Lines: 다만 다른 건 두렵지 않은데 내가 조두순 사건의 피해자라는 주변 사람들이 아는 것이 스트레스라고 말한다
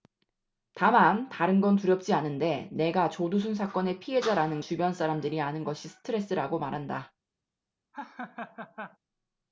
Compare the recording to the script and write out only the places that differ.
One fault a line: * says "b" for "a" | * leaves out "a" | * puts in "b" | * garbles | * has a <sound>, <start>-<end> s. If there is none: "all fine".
* has a laugh, 7.9-9.0 s